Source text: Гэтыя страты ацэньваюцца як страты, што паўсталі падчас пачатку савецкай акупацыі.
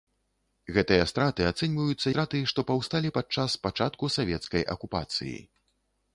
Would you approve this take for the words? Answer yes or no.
no